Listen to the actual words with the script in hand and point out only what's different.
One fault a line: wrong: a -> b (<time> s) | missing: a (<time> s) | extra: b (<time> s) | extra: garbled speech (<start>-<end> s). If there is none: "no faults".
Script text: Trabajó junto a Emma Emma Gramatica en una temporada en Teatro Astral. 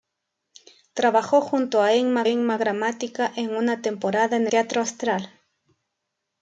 no faults